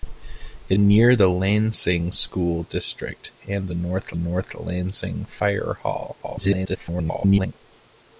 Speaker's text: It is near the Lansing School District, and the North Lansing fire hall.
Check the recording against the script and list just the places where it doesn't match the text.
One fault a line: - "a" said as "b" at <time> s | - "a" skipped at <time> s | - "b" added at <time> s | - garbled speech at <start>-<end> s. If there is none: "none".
- "is" skipped at 0.8 s
- "North" added at 4.1 s
- garbled speech at 6.2-7.5 s